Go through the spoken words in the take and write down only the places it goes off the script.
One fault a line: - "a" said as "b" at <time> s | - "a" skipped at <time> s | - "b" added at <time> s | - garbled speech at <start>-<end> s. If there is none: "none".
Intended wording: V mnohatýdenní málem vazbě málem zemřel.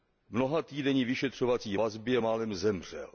- "málem" said as "vyšetřovací" at 1.1 s